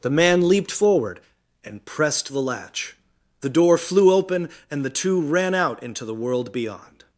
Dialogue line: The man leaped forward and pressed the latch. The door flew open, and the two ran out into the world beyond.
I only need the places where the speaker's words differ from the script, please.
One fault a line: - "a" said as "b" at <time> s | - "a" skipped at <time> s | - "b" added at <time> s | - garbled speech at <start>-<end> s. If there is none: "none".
none